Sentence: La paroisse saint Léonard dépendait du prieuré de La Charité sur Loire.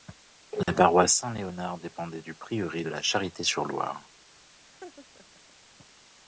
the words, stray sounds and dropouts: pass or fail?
fail